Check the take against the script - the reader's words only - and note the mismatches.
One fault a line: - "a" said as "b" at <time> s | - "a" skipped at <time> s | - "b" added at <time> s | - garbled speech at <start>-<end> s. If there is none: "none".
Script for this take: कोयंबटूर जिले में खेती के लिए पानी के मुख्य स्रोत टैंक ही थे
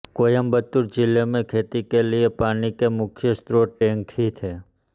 none